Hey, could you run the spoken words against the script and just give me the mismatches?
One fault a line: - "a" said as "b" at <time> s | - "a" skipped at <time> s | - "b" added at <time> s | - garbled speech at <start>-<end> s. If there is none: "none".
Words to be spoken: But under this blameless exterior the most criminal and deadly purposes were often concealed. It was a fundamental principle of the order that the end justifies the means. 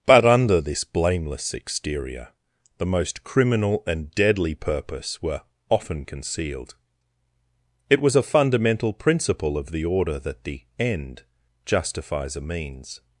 - "purposes" said as "purpose" at 4.5 s
- "the" said as "a" at 12.3 s